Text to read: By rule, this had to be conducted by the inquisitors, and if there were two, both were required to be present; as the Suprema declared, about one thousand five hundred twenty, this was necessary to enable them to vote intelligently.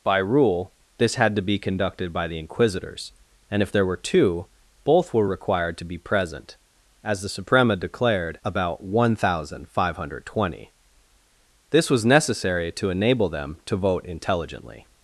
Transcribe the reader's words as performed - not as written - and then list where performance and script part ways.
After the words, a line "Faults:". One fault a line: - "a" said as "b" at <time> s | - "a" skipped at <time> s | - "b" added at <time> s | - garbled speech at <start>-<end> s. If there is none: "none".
By rule, this had to be conducted by the inquisitors, and if there were two, both were required to be present; as the Suprema declared, about one thousand five hundred twenty, this was necessary to enable them to vote intelligently.
Faults:
none